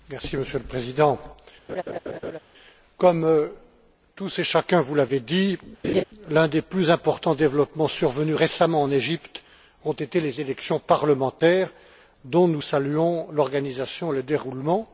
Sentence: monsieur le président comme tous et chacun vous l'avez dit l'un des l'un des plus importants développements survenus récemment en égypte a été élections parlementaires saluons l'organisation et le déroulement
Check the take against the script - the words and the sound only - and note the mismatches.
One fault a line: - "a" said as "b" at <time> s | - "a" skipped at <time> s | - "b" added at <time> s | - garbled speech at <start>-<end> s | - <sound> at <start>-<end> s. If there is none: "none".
- laugh at 1.7-2.4 s
- laugh at 5.8-6.0 s
- "l'un des" skipped at 6.6 s
- "les" added at 10.2 s
- "dont nous" added at 12.2 s